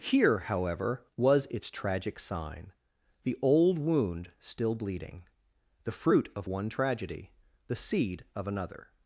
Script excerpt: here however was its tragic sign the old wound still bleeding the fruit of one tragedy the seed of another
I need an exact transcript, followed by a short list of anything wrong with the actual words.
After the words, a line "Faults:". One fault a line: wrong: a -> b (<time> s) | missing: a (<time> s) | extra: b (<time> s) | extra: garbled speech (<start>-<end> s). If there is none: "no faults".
here however was its tragic sign the old wound still bleeding the fruit of one tragedy the seed of another
Faults:
no faults